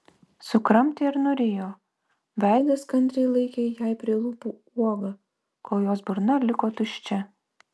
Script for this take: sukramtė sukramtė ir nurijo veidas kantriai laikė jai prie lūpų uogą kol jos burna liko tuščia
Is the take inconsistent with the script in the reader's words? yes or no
yes